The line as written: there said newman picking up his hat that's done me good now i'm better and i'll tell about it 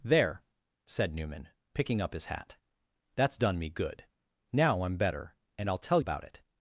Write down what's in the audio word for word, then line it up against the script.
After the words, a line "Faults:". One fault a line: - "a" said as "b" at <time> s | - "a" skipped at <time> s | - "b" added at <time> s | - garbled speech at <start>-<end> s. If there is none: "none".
there said newman picking up his hat that's done me good now i'm better and i'll tell about it
Faults:
none